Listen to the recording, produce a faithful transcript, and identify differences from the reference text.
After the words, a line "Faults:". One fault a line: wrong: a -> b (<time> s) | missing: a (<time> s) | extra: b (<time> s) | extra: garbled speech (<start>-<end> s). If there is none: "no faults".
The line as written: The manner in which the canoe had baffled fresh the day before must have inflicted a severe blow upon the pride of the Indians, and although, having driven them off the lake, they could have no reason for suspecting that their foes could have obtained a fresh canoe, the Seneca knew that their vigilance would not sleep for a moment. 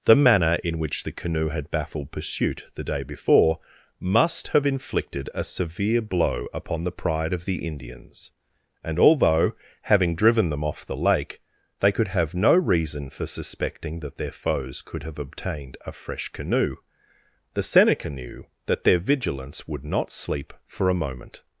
The manner in which the canoe had baffled pursuit the day before must have inflicted a severe blow upon the pride of the Indians, and although, having driven them off the lake, they could have no reason for suspecting that their foes could have obtained a fresh canoe, the Seneca knew that their vigilance would not sleep for a moment.
Faults:
wrong: fresh -> pursuit (2.1 s)